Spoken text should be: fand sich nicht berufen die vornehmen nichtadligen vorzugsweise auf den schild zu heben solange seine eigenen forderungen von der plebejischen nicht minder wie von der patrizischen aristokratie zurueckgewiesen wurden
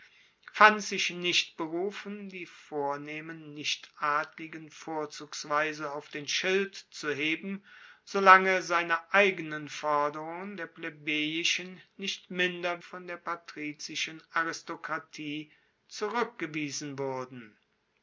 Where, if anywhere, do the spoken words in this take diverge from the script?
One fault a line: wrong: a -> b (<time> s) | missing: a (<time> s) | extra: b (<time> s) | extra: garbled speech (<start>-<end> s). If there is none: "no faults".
missing: von (10.6 s)
missing: wie (12.8 s)